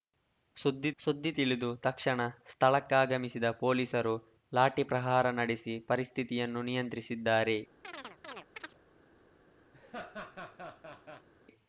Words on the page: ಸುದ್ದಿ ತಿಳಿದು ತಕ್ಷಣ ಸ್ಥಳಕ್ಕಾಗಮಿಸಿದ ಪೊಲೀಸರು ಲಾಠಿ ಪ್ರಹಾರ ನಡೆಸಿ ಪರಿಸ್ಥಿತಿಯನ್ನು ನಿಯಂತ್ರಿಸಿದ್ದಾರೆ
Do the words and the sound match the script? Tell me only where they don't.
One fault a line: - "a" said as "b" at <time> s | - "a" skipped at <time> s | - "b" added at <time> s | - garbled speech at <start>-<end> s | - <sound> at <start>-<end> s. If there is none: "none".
- "ಸುದ್ದಿ" added at 1.0 s
- chirp at 7.8-8.8 s
- laugh at 9.7-11.3 s